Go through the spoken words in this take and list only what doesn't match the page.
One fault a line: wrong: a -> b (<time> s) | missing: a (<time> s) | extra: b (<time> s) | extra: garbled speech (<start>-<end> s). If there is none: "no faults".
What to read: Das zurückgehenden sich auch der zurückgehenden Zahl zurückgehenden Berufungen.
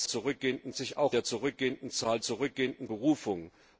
no faults